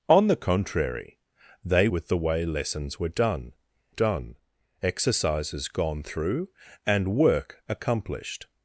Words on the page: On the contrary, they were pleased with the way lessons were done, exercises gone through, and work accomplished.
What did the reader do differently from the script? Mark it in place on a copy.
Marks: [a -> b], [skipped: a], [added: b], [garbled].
On the contrary, they [skipped: were pleased] with the way lessons were done, [added: done] exercises gone through, and work accomplished.